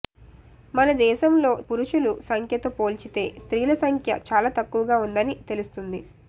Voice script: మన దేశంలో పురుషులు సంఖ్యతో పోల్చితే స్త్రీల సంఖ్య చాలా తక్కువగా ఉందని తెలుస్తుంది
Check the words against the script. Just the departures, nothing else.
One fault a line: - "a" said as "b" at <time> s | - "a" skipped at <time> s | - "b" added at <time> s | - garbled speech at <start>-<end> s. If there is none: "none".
none